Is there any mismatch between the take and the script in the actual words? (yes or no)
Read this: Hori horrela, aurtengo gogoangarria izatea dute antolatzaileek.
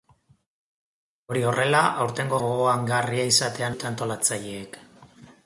no